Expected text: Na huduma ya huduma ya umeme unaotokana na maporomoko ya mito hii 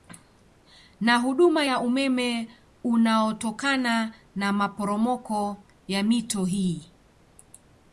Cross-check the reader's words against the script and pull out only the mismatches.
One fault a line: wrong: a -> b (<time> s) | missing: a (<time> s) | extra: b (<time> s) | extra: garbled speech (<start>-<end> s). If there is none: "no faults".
missing: huduma ya (1.8 s)